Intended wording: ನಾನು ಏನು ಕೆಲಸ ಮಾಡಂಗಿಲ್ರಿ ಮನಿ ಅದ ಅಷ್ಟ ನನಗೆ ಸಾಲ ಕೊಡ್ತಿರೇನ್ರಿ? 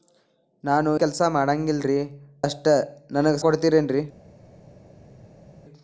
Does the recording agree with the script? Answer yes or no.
no